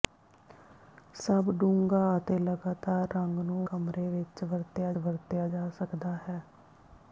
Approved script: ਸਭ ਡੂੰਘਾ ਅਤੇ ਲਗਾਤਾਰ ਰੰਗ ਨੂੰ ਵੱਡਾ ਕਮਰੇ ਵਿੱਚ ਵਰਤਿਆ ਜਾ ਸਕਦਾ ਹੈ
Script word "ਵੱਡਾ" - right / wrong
wrong